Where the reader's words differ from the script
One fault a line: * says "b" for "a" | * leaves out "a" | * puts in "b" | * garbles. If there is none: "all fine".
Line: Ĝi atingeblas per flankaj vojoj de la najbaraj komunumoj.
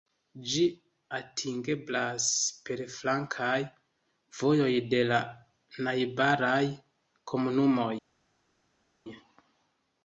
all fine